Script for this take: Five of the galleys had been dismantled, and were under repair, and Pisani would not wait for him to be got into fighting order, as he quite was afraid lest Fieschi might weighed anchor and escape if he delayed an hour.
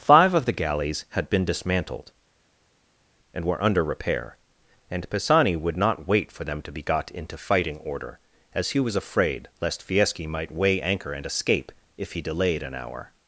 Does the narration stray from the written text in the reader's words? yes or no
yes